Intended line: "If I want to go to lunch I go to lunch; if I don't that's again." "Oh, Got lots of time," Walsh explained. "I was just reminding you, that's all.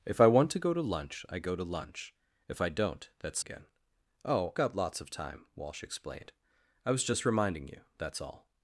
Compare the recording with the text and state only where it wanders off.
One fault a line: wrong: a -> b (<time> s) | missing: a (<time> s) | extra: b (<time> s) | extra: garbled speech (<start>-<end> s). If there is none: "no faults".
no faults